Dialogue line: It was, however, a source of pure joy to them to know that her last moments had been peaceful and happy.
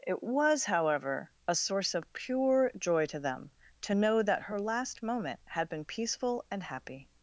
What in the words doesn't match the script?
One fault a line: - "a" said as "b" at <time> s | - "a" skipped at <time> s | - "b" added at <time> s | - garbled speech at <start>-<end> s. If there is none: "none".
- "moments" said as "moment" at 5.0 s